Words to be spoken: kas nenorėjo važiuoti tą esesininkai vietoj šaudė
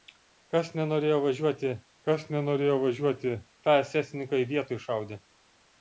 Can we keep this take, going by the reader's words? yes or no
no